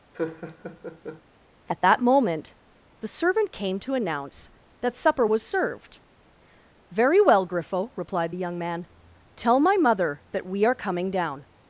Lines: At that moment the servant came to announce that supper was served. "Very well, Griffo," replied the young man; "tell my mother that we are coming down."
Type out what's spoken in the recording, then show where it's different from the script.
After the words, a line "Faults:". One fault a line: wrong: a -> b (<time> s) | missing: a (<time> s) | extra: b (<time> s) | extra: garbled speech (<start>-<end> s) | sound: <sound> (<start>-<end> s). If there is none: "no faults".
At that moment the servant came to announce that supper was served. "Very well, Griffo," replied the young man; "tell my mother that we are coming down."
Faults:
sound: laugh (0.1-1.2 s)